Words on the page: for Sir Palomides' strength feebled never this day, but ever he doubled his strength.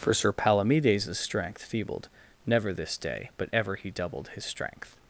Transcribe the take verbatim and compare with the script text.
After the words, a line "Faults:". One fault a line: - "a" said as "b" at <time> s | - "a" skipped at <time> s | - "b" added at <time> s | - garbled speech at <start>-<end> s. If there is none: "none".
for Sir Palomides' strength feebled never this day, but ever he doubled his strength.
Faults:
none